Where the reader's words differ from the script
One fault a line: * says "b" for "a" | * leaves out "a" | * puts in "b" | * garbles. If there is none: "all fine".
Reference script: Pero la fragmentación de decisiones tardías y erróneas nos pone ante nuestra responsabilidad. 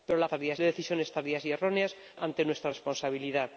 * says "tardías" for "fragmentación"
* leaves out "nos pone"